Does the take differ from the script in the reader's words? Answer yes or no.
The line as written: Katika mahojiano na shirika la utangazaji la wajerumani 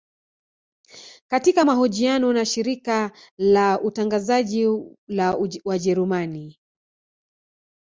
no